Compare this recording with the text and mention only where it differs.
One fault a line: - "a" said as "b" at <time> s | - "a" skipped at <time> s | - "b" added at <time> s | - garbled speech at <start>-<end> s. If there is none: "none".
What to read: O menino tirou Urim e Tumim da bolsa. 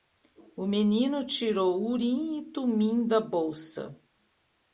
none